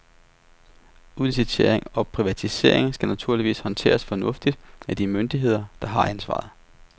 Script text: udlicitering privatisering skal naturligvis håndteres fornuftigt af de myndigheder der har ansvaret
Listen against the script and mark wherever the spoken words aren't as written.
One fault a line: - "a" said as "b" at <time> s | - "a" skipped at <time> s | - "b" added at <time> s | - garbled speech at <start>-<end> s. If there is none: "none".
- "og" added at 1.9 s